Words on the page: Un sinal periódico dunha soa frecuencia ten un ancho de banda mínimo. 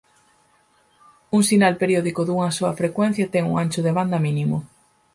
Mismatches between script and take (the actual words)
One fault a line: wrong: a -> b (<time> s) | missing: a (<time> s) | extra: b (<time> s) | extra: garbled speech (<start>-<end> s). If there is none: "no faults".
no faults